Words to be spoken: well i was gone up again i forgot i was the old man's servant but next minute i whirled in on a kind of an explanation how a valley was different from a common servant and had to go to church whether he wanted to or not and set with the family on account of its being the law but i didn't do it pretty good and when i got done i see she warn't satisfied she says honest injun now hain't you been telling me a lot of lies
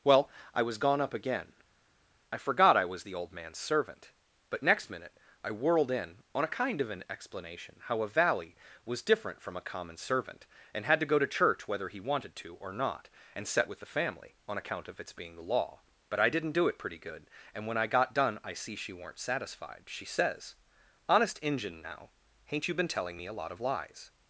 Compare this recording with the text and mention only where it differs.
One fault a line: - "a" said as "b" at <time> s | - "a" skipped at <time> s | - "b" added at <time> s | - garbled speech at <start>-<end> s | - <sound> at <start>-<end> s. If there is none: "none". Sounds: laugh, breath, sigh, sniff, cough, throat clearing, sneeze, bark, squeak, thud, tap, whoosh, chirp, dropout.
- "warn't" said as "weren't" at 18.9 s